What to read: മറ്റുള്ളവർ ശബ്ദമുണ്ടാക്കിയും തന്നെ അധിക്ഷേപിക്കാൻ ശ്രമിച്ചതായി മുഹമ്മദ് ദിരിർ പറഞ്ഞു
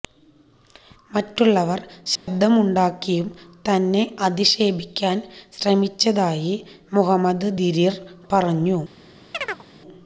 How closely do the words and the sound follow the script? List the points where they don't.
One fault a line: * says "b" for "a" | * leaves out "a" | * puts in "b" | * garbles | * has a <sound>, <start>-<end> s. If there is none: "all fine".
* has a dropout, 2.2-2.3 s
* has a chirp, 9.3-9.6 s